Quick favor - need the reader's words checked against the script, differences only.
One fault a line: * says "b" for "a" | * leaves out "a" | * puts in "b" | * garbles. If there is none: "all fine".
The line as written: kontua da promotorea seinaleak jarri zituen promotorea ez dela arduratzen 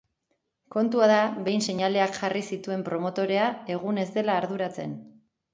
* says "behin" for "promotorea"
* puts in "egun"